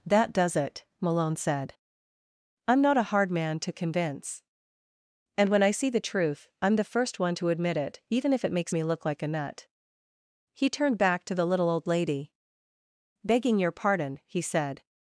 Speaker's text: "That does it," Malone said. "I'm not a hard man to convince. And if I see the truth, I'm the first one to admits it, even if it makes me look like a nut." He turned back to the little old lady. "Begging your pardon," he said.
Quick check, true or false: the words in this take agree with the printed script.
false